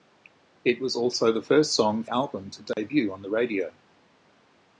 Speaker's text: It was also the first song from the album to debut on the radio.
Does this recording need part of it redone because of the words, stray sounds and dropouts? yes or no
yes